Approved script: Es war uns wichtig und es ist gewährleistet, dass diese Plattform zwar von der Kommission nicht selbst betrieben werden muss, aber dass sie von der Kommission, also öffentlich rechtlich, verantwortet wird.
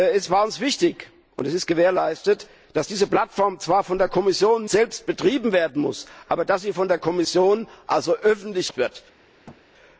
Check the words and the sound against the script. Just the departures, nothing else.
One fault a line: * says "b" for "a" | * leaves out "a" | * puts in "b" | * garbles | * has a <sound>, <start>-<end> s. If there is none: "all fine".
* leaves out "nicht"
* leaves out "rechtlich verantwortet"
* has a thud, 9.5-9.6 s